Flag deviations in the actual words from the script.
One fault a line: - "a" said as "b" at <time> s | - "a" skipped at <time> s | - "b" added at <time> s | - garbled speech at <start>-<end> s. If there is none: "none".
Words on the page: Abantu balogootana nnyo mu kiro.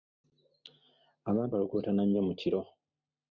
none